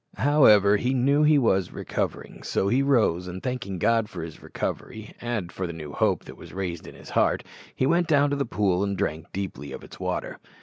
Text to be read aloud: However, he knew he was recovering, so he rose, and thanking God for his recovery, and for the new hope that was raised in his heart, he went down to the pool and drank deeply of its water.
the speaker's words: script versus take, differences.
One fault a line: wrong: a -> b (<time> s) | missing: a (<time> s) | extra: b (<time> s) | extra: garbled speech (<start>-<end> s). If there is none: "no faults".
no faults